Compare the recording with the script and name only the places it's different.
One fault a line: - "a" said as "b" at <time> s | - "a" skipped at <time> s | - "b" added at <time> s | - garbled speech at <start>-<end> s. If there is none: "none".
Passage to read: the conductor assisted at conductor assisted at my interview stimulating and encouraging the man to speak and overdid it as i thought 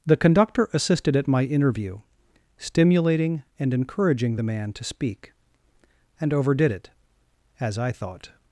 - "conductor assisted at" skipped at 1.3 s